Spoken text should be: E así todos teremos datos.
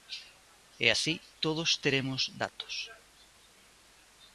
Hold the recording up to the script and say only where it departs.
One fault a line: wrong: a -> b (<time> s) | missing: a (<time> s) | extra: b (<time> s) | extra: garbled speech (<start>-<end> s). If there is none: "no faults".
no faults